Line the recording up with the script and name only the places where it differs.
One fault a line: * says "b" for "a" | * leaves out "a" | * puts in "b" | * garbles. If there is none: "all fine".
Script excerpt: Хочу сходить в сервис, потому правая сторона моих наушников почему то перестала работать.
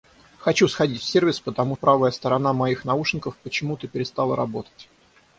all fine